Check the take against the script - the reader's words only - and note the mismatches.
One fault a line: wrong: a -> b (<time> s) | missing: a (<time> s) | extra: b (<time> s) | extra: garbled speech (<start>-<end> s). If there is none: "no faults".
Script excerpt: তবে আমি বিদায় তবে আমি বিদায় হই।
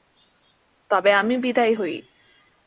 missing: তবে আমি বিদায় (1.7 s)